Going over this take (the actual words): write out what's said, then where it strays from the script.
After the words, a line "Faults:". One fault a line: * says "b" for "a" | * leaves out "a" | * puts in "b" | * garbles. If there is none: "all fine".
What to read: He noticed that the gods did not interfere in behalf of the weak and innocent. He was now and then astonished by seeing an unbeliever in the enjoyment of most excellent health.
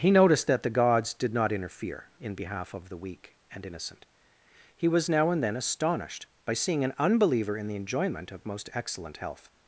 He noticed that the gods did not interfere in behalf of the weak and innocent. He was now and then astonished by seeing an unbeliever in the enjoyment of most excellent health.
Faults:
all fine